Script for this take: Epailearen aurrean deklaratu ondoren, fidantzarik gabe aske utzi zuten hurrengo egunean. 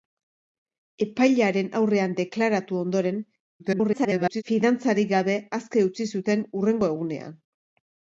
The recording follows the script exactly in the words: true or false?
false